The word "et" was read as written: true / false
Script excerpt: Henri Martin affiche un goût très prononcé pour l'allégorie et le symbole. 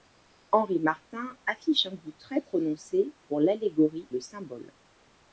false